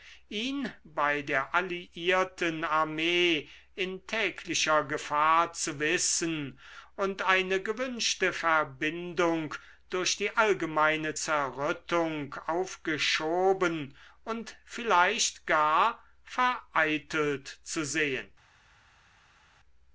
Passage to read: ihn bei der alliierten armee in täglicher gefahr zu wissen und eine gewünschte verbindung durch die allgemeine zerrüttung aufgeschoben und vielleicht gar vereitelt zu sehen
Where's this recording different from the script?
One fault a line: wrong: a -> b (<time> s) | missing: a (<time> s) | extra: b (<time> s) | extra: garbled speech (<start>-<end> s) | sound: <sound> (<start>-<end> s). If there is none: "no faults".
no faults